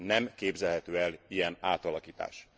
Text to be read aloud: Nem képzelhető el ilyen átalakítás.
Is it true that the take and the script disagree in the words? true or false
false